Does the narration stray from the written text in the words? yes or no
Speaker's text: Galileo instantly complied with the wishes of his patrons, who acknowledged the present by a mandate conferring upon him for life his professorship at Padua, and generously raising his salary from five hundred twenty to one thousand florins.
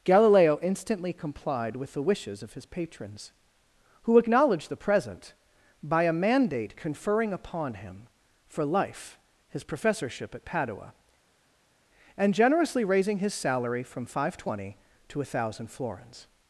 no